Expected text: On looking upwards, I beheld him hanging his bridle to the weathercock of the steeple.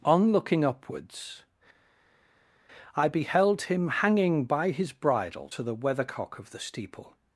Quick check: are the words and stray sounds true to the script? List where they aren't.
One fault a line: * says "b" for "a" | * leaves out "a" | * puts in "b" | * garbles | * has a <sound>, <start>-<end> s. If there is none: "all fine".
* puts in "by"